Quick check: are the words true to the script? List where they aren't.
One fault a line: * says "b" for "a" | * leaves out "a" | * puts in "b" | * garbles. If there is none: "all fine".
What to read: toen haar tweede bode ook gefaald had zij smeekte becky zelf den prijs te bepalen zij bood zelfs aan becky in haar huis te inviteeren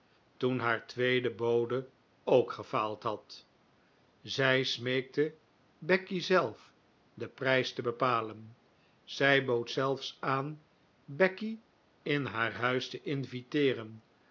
all fine